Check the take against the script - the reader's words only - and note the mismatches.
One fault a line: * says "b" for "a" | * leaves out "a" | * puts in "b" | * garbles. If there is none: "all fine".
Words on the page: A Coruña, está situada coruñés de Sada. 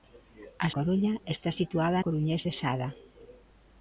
all fine